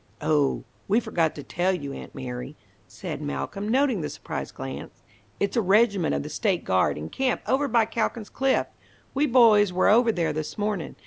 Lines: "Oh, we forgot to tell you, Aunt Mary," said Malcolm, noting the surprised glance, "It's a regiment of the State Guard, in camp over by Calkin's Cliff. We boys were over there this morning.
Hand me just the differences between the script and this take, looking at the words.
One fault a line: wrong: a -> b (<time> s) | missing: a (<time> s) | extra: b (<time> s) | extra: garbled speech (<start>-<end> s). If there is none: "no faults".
no faults